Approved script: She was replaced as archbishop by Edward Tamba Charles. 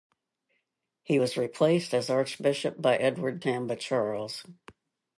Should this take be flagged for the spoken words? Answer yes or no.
yes